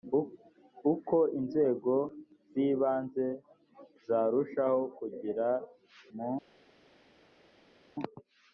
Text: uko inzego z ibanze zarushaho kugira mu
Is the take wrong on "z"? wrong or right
right